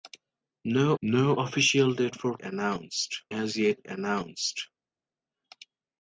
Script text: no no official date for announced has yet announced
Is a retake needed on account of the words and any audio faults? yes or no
no